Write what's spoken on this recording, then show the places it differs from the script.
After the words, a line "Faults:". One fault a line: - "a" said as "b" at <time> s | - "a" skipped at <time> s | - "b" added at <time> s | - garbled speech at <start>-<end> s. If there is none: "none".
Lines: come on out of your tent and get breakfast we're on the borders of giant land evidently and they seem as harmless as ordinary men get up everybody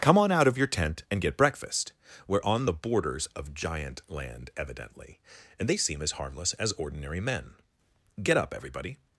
come on out of your tent and get breakfast we're on the borders of giant land evidently and they seem as harmless as ordinary men get up everybody
Faults:
none